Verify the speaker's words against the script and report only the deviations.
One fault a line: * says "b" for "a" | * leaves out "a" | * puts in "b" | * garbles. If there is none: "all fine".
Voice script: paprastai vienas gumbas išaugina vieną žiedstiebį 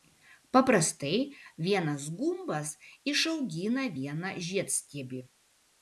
all fine